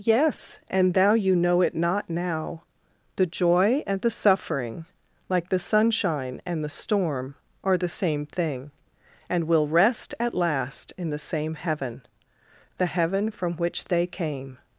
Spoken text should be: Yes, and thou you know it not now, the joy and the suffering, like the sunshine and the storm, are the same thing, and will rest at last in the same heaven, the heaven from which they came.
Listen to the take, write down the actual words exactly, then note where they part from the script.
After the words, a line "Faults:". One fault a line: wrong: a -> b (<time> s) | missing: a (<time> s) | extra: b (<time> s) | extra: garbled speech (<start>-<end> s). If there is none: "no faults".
Yes, and thou you know it not now, the joy and the suffering, like the sunshine and the storm, are the same thing, and will rest at last in the same heaven, the heaven from which they came.
Faults:
no faults